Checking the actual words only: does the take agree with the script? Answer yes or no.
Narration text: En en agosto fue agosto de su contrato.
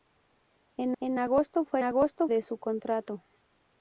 yes